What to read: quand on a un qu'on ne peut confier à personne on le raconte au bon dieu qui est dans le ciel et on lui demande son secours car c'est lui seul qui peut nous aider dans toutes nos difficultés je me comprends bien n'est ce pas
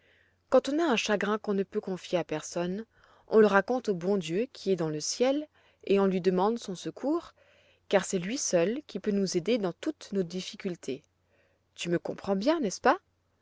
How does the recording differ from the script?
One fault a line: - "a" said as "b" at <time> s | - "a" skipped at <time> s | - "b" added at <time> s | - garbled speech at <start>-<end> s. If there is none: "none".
- "chagrin" added at 0.9 s
- "je" said as "tu" at 11.7 s